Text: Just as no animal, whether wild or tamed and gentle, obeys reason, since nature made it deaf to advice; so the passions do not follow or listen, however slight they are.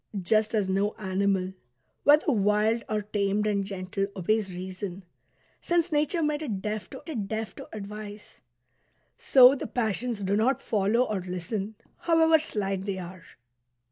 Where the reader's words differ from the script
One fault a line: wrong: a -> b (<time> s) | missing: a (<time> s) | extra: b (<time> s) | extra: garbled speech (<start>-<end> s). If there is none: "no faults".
extra: it deaf to (7.1 s)